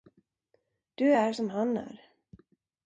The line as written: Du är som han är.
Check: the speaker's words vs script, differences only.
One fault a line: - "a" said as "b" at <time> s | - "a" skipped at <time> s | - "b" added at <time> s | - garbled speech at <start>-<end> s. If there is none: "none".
none